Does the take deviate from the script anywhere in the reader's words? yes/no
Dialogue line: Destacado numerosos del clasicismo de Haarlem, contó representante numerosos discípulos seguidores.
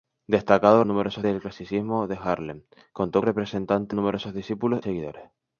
no